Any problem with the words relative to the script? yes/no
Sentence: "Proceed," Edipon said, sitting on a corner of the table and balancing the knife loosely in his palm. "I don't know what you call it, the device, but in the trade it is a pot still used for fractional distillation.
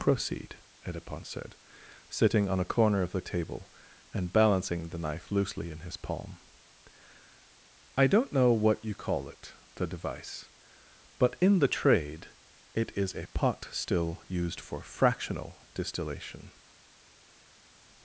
no